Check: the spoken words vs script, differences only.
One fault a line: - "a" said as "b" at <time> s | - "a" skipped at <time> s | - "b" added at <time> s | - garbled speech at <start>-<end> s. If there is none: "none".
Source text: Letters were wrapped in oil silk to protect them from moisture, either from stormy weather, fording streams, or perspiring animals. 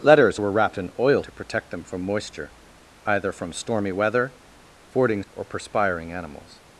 - "silk" skipped at 1.2 s
- "streams" skipped at 5.2 s